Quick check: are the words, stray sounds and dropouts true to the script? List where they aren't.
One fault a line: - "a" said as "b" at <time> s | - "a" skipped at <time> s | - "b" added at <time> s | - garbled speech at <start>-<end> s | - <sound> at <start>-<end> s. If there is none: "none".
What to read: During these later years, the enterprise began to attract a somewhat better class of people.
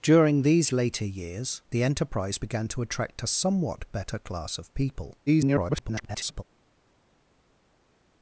- garbled speech at 5.3-6.4 s